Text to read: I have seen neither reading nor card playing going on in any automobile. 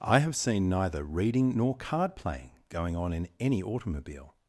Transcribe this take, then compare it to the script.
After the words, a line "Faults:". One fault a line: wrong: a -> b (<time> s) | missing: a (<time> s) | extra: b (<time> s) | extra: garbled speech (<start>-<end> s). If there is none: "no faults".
I have seen neither reading nor card playing going on in any automobile.
Faults:
no faults